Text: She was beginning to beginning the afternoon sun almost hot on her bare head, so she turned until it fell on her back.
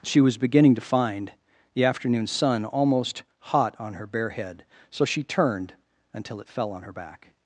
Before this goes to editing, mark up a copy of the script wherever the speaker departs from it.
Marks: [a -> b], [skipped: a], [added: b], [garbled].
She was beginning to [beginning -> find] the afternoon sun almost hot on her bare head, so she turned until it fell on her back.